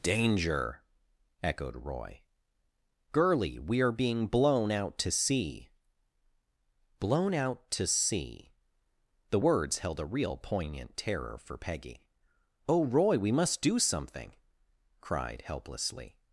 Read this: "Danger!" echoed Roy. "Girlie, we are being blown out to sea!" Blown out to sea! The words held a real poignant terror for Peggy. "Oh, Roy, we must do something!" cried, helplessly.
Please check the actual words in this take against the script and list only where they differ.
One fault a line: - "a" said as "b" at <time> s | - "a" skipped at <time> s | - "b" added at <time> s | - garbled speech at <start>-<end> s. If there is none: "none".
none